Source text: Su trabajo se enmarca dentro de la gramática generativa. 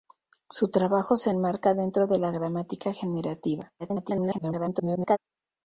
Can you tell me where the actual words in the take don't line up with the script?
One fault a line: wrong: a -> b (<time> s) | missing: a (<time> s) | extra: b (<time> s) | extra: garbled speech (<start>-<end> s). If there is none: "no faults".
extra: garbled speech (3.8-5.2 s)